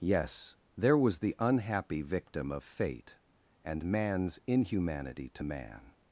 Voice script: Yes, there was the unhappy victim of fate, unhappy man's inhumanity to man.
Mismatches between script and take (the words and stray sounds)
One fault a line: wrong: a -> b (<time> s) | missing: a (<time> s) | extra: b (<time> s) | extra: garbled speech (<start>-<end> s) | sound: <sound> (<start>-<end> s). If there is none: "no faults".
wrong: unhappy -> and (3.6 s)